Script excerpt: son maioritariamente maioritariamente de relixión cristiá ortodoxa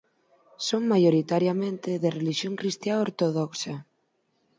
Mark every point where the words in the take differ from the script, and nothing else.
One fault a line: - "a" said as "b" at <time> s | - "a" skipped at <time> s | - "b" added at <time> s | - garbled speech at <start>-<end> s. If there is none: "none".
- "maioritariamente" skipped at 1.9 s